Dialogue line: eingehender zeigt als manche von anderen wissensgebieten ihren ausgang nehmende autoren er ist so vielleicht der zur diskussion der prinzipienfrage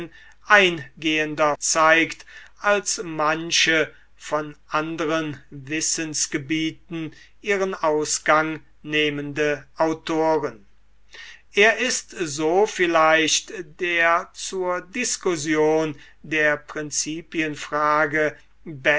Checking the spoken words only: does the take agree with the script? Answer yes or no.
yes